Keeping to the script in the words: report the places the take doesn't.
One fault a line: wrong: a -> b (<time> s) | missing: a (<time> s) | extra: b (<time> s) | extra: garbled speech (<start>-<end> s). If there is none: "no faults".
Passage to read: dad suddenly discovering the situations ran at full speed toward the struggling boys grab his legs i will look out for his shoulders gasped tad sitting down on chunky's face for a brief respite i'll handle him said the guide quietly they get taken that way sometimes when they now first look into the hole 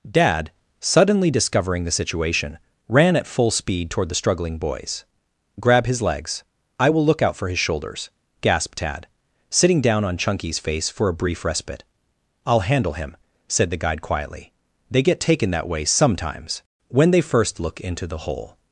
wrong: situations -> situation (1.9 s)
missing: now (17.2 s)